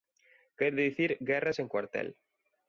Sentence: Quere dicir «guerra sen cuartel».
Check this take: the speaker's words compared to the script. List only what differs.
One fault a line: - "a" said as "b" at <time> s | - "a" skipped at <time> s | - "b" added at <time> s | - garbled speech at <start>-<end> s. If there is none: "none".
none